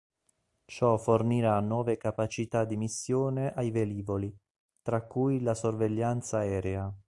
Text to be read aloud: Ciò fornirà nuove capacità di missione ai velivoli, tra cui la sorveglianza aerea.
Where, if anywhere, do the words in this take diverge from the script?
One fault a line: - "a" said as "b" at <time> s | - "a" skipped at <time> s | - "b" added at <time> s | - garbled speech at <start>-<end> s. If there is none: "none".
none